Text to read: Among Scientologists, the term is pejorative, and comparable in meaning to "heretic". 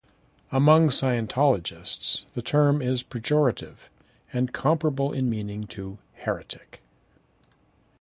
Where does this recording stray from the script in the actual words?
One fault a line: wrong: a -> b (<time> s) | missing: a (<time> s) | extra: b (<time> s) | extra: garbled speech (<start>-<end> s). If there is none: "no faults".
no faults